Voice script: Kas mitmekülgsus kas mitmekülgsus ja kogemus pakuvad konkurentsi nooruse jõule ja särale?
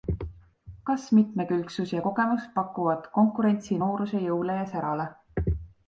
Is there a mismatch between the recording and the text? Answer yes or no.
yes